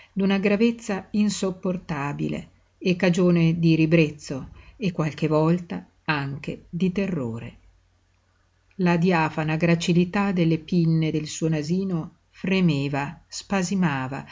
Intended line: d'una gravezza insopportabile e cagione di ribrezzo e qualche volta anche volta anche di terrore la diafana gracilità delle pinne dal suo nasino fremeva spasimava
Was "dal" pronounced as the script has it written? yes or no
no